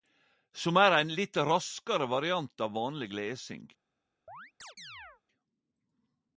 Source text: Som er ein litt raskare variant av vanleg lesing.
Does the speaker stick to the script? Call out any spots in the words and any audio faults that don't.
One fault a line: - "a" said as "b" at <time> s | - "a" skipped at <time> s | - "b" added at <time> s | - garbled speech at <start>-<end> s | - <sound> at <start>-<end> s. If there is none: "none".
- chirp at 4.3-5.2 s